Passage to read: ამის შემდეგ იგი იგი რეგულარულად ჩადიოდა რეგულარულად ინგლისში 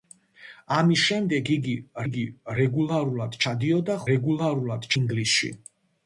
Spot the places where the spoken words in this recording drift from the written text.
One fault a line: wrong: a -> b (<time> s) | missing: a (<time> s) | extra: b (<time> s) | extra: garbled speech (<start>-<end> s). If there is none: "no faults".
no faults